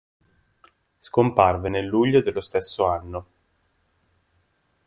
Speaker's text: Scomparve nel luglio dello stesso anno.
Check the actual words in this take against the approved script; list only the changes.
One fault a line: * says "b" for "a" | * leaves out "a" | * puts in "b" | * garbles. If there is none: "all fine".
all fine